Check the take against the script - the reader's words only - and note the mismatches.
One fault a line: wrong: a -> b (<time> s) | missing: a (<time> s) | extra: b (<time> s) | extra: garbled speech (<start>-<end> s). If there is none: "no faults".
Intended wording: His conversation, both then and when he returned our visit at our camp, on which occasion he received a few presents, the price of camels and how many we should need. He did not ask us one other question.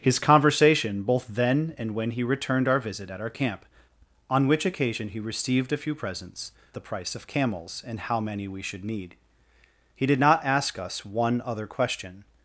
no faults